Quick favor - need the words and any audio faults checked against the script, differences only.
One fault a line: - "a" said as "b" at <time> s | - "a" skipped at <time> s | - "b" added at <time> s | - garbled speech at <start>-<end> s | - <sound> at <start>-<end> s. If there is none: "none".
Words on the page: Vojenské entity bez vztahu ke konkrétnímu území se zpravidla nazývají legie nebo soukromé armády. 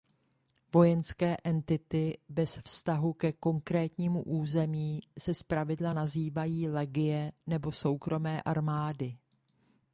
none